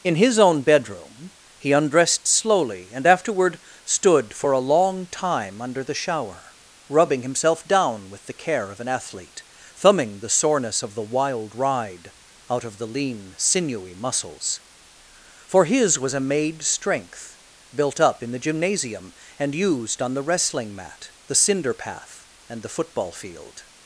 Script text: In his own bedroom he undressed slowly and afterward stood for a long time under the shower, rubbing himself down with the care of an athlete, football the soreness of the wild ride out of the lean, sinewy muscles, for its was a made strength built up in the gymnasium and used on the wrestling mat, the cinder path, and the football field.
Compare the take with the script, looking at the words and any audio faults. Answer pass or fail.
fail